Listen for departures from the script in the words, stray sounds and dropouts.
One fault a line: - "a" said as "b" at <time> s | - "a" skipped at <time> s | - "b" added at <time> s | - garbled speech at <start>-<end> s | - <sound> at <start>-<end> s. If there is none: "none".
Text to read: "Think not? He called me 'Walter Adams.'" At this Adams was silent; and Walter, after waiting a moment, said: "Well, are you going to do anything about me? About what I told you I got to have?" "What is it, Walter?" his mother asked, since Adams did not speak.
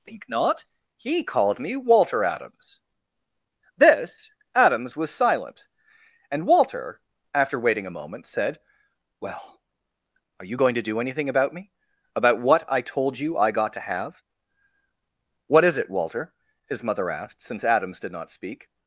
- "At" skipped at 2.8 s